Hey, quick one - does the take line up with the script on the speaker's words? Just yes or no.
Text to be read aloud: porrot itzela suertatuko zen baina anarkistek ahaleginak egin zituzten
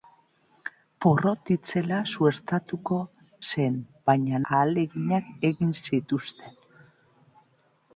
no